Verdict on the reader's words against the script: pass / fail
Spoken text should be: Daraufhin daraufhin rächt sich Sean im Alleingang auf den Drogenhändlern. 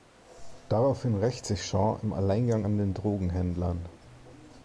fail